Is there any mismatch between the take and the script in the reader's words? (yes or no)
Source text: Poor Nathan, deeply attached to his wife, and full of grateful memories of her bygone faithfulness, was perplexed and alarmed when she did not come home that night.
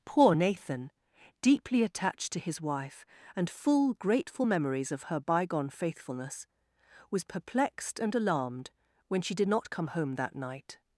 yes